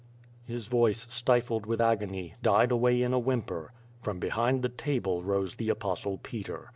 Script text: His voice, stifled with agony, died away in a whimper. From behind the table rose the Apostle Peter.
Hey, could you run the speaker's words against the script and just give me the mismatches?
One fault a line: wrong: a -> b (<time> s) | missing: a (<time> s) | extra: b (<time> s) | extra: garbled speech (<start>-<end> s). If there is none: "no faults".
no faults